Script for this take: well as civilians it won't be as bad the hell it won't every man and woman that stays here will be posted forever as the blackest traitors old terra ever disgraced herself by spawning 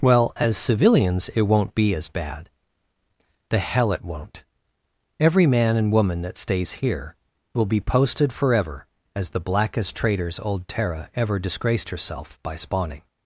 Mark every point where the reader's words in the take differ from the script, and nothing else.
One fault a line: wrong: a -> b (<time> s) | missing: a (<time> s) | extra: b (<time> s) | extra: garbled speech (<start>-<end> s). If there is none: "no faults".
no faults